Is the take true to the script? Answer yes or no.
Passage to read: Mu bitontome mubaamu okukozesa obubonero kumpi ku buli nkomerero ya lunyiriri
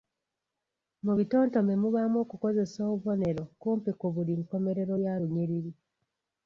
yes